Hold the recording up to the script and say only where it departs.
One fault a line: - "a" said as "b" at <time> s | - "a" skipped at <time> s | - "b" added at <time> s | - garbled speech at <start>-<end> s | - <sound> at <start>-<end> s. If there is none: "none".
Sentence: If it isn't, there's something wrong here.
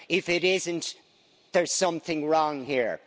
none